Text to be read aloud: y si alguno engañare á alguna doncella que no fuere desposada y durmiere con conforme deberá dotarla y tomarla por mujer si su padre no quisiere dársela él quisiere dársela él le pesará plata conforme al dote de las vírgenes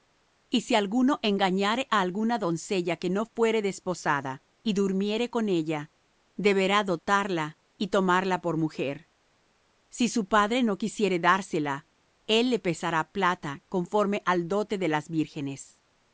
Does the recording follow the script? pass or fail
fail